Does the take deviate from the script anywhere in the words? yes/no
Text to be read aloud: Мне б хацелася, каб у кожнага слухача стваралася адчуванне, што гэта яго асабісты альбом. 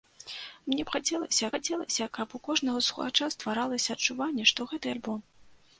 yes